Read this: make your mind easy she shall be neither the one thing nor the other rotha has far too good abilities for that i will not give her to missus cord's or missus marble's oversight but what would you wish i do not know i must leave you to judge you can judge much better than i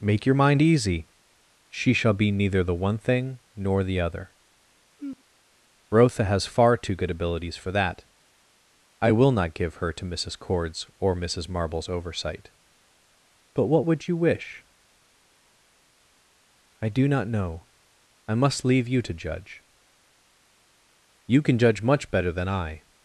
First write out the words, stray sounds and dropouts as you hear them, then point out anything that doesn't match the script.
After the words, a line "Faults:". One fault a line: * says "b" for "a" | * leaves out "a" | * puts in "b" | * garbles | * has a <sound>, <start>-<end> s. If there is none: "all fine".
make your mind easy she shall be neither the one thing nor the other rotha has far too good abilities for that i will not give her to missus cord's or missus marble's oversight but what would you wish i do not know i must leave you to judge you can judge much better than i
Faults:
* has a sigh, 5.0-5.2 s